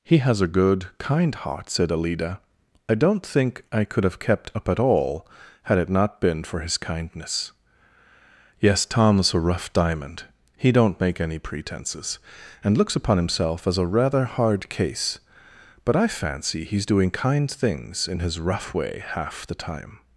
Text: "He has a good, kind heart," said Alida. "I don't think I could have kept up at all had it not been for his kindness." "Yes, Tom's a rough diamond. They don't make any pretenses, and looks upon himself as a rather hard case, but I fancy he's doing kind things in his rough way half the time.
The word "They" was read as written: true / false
false